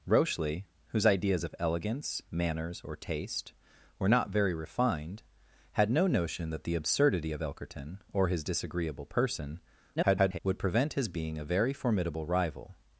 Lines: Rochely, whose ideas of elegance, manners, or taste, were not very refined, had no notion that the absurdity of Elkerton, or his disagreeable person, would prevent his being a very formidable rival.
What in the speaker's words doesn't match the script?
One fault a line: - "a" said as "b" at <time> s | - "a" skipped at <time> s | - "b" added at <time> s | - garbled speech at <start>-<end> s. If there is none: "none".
- garbled speech at 10.0-10.4 s